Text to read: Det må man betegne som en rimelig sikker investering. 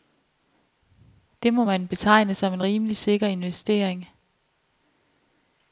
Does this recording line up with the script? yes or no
yes